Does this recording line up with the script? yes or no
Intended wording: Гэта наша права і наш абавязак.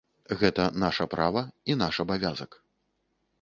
yes